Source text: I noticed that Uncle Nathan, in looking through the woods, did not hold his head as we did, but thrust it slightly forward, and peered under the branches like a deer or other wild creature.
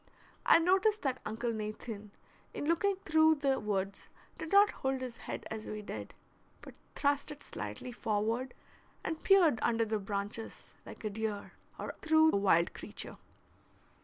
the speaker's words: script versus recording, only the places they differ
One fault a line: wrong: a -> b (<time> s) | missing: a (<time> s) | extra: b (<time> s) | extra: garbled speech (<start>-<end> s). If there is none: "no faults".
wrong: other -> through (12.0 s)